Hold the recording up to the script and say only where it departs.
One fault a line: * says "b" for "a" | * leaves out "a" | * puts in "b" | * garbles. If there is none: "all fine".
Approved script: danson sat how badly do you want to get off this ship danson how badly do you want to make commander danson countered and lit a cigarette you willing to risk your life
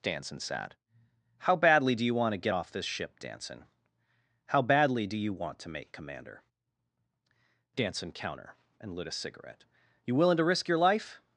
* says "counter" for "countered"